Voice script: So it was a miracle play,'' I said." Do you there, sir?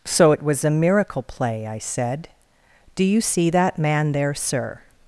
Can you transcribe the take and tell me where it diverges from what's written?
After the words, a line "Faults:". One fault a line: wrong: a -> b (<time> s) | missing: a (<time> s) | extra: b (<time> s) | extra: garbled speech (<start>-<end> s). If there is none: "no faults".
So it was a miracle play,'' I said." Do you see that man there, sir?
Faults:
extra: see that man (3.2 s)